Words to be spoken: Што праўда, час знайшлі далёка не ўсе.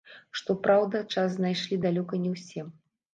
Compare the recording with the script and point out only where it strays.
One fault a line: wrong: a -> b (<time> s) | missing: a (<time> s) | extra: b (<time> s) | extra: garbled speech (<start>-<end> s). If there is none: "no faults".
no faults